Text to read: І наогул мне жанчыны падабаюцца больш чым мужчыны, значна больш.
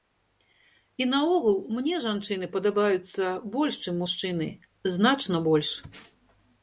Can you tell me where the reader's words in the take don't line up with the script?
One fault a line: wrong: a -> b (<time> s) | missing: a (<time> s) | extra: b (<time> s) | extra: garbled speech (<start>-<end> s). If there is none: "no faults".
no faults